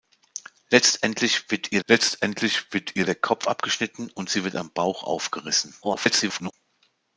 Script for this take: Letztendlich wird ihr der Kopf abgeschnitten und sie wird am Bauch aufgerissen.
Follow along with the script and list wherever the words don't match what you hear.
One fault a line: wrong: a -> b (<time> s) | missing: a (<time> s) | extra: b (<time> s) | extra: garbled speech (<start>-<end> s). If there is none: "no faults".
extra: letztendlich wird ihr (1.9 s)
extra: garbled speech (5.8-6.5 s)